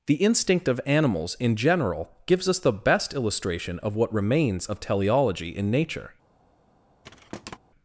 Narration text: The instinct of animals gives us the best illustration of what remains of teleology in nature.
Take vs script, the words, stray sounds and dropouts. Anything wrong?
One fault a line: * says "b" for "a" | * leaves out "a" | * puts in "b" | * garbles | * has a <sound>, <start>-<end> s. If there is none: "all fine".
* puts in "in general"
* has a thud, 7.0-7.6 s